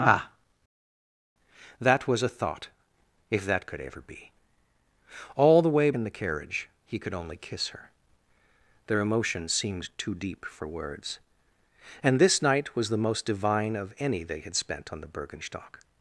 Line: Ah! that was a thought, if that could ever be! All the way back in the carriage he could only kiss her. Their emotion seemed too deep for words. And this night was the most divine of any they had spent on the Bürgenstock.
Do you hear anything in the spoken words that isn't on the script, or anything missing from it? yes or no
yes